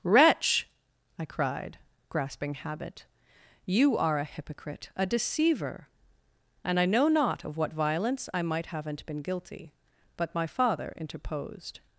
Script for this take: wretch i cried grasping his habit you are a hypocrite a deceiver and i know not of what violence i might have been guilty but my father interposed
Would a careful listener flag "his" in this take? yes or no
yes